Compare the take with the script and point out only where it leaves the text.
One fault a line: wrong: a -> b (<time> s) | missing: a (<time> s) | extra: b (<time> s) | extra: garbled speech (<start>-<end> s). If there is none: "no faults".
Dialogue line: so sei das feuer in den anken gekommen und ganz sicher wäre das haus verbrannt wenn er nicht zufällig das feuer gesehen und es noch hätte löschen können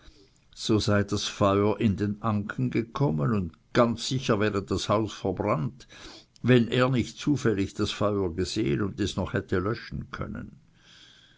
no faults